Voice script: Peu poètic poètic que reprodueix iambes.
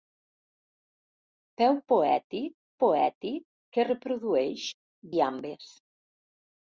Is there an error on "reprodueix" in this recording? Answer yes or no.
no